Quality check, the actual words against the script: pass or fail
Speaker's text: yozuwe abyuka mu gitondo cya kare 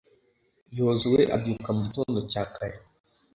pass